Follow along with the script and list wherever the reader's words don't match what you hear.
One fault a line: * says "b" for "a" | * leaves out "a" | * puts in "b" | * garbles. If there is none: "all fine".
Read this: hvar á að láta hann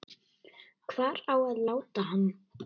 all fine